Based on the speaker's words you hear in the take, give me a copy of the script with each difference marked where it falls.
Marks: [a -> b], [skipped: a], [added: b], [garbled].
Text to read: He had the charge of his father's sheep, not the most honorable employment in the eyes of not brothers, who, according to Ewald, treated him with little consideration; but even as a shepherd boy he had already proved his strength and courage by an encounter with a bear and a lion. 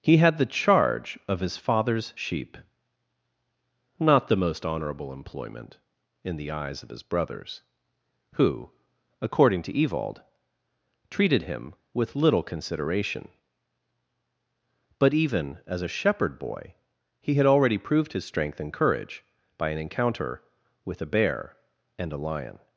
He had the charge of his father's sheep, not the most honorable employment in the eyes of [not -> his] brothers, who, according to Ewald, treated him with little consideration; but even as a shepherd boy he had already proved his strength and courage by an encounter with a bear and a lion.